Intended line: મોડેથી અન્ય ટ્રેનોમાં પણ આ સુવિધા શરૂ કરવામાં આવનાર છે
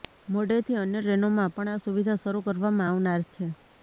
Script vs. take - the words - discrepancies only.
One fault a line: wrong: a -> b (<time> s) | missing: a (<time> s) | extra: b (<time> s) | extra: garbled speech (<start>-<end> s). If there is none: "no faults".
no faults